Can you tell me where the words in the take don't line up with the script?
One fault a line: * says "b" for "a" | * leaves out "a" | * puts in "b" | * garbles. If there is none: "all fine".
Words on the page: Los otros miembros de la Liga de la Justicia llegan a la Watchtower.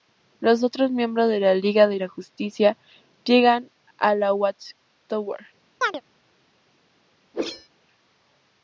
all fine